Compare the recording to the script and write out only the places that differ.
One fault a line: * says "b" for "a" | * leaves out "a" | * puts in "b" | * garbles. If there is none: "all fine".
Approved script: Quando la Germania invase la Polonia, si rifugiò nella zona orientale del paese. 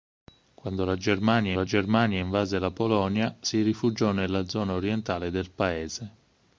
* puts in "la Germania"